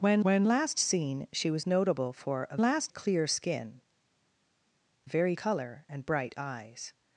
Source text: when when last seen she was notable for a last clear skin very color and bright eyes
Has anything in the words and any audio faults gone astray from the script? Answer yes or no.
no